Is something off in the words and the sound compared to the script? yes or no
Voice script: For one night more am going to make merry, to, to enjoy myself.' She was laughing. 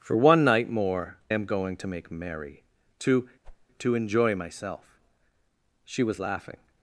yes